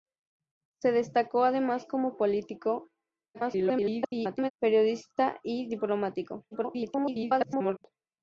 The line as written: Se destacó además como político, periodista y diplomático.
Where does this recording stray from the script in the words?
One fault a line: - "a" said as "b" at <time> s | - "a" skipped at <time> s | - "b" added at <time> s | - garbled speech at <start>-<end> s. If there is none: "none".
- garbled speech at 3.3-4.5 s
- garbled speech at 6.5-7.8 s